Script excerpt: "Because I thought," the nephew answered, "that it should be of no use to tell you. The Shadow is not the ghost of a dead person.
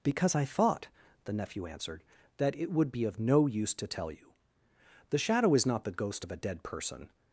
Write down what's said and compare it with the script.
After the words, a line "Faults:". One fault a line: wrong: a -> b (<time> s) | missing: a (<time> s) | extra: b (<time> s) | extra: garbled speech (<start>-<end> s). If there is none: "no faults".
"Because I thought," the nephew answered, "that it would be of no use to tell you. The Shadow is not the ghost of a dead person.
Faults:
wrong: should -> would (2.7 s)